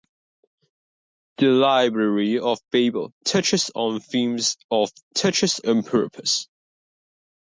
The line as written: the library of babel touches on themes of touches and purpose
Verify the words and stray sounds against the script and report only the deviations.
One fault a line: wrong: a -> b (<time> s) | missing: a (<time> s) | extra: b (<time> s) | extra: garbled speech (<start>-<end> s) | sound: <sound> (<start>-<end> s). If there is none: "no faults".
no faults